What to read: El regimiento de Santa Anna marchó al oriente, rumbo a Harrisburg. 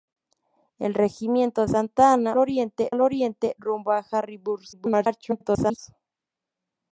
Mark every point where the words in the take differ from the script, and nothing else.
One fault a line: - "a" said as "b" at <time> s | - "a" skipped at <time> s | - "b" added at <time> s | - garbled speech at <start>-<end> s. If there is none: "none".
- "de" skipped at 1.7 s
- "marchó" said as "oriente" at 2.4 s
- garbled speech at 4.7-5.8 s